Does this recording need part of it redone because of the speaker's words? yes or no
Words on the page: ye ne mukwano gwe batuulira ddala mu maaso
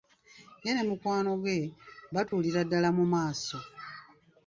no